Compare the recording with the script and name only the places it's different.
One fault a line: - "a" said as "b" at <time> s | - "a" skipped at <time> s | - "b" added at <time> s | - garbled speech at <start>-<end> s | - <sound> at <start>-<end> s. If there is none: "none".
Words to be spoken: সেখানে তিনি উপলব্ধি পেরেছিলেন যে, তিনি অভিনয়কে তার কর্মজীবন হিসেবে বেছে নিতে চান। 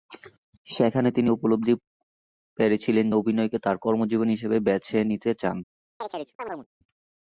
- "যে তিনি" skipped at 3.1 s
- chirp at 6.0-6.7 s